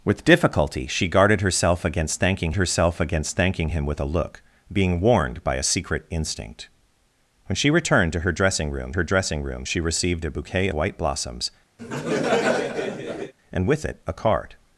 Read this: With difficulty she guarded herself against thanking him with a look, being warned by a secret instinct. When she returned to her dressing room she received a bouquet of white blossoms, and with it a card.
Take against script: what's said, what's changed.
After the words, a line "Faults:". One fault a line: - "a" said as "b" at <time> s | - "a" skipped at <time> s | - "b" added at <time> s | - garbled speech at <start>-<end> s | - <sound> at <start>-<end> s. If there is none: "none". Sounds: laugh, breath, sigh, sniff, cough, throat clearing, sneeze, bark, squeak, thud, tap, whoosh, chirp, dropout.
With difficulty she guarded herself against thanking herself against thanking him with a look, being warned by a secret instinct. When she returned to her dressing room her dressing room she received a bouquet white blossoms, and with it a card.
Faults:
- "herself against thanking" added at 2.6 s
- "her dressing room" added at 8.9 s
- "of" skipped at 10.7 s
- laugh at 11.8-13.3 s